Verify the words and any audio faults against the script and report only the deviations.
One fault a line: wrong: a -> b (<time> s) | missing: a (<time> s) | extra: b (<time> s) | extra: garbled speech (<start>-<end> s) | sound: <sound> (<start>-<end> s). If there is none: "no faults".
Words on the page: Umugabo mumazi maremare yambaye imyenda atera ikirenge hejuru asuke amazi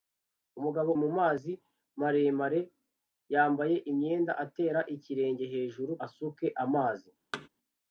sound: thud (7.3-7.5 s)